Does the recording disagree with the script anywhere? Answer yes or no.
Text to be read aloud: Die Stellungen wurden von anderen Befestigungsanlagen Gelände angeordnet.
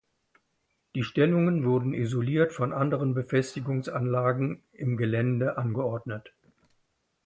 yes